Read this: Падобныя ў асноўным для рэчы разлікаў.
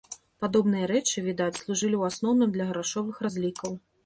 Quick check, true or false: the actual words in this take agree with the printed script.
false